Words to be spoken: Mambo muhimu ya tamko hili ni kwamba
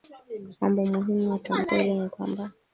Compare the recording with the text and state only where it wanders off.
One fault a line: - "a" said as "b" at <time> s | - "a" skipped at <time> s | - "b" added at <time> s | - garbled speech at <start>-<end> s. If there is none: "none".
none